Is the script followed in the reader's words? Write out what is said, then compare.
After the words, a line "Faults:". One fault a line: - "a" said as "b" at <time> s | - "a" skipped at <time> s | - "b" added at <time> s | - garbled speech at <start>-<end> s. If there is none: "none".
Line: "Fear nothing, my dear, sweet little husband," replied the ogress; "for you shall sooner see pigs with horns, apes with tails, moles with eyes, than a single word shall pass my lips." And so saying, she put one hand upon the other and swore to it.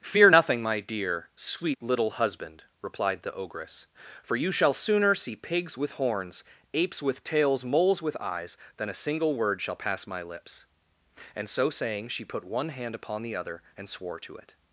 "Fear nothing, my dear, sweet little husband," replied the ogress; "for you shall sooner see pigs with horns, apes with tails, moles with eyes, than a single word shall pass my lips." And so saying, she put one hand upon the other and swore to it.
Faults:
none